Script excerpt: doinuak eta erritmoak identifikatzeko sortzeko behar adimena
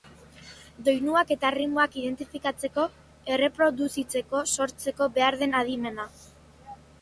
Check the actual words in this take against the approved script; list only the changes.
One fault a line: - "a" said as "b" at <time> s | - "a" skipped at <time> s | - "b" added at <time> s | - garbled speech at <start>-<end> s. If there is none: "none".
- "erreproduzitzeko" added at 3.4 s
- "den" added at 5.4 s